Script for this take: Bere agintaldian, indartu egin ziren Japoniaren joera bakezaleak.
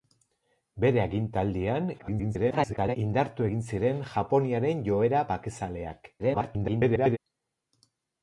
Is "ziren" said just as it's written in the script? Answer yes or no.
yes